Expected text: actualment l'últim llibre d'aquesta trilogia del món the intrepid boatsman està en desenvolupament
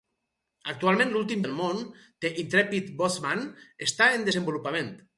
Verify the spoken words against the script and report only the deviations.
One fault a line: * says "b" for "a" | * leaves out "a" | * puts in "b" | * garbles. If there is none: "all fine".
* leaves out "llibre d'aquesta trilogia"